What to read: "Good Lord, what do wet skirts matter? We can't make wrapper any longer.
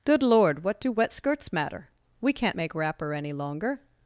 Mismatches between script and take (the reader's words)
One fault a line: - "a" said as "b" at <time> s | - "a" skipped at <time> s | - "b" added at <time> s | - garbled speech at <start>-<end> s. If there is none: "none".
none